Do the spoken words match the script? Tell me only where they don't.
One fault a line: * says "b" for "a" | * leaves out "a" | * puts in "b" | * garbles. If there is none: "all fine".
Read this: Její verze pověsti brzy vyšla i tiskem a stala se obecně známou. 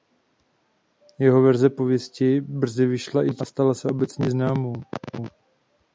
* says "Jeho" for "Její"